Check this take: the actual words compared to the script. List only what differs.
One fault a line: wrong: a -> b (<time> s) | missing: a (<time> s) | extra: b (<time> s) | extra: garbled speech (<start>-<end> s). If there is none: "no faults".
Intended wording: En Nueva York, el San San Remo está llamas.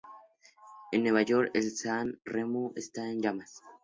missing: San (2.2 s)
extra: en (3.1 s)